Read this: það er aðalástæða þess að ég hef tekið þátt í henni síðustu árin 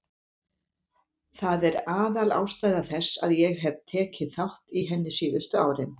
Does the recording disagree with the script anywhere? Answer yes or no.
no